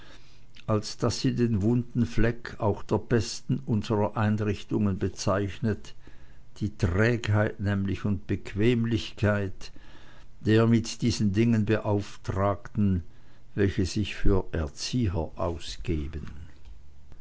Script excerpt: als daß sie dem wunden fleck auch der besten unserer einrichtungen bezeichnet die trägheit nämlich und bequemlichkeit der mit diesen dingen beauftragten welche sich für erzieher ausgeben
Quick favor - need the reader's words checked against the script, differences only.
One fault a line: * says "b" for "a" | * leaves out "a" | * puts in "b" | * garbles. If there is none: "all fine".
* says "den" for "dem"